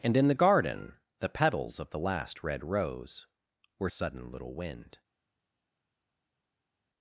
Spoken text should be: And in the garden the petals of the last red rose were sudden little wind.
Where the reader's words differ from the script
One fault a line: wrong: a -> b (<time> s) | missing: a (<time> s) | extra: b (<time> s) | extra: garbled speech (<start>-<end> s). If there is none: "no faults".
no faults